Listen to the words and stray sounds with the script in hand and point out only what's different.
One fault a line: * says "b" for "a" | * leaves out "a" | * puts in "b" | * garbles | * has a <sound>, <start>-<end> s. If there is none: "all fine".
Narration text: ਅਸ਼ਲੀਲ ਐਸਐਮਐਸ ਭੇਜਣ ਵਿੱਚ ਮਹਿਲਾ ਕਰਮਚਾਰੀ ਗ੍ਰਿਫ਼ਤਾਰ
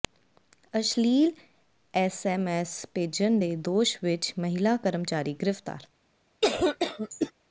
* puts in "ਦੇ ਦੋਸ਼"
* has a cough, 6.4-7.3 s